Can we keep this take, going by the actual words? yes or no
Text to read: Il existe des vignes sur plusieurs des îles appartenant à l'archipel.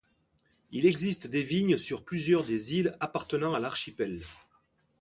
yes